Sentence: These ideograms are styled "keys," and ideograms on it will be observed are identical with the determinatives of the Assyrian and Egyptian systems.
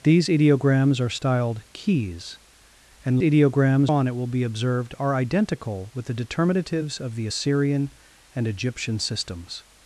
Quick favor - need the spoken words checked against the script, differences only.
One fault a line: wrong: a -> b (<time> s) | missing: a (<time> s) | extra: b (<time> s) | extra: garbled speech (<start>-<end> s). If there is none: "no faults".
no faults